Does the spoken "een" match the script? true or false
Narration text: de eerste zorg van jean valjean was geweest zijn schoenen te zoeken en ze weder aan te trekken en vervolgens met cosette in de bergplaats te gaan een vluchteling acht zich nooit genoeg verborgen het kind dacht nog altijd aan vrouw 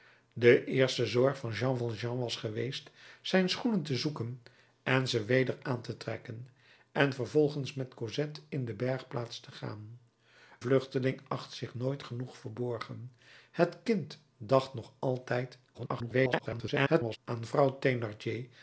false